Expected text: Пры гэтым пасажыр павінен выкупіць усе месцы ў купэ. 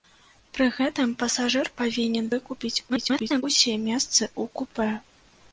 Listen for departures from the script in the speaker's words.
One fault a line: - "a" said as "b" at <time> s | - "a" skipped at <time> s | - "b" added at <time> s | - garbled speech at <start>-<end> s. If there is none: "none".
- garbled speech at 2.9-3.4 s